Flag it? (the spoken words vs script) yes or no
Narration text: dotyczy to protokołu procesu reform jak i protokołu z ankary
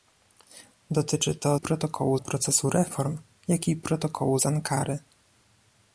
no